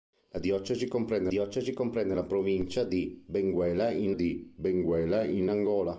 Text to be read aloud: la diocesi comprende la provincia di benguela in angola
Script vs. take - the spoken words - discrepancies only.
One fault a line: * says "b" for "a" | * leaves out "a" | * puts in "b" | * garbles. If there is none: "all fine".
* puts in "diocesi comprende"
* puts in "di benguela in"